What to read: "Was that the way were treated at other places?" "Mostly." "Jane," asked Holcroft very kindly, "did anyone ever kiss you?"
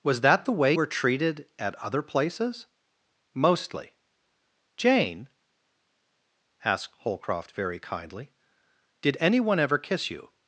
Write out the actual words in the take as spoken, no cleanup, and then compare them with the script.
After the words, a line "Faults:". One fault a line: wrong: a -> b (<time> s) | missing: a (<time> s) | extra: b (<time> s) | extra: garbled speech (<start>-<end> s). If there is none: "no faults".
"Was that the way were treated at other places?" "Mostly." "Jane," asked Holcroft very kindly, "did anyone ever kiss you?"
Faults:
no faults